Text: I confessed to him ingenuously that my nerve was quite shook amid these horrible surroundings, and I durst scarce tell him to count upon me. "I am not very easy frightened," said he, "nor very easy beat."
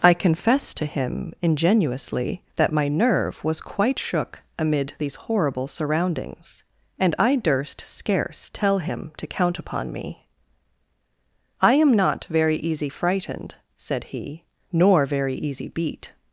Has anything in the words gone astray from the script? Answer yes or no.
no